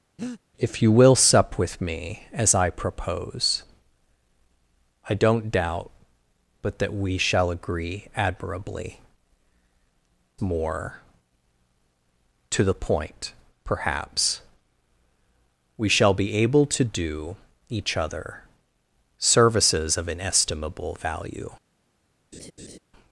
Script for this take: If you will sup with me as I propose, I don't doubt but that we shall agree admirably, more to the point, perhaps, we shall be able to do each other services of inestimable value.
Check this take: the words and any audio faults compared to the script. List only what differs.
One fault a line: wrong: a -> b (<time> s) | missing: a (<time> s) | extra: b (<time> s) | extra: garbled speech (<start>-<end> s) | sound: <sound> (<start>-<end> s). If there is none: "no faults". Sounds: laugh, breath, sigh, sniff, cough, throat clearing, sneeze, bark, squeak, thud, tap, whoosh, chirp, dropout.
sound: breath (0.2-0.4 s)
sound: laugh (22.3-22.8 s)